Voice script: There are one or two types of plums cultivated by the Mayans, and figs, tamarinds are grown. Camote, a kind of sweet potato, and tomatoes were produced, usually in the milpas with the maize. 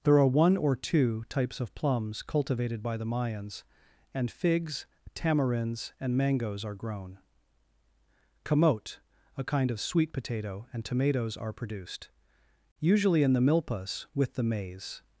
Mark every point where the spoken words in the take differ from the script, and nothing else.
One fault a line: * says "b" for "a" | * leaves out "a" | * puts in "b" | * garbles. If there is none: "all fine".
* puts in "and mangoes"
* says "are" for "were"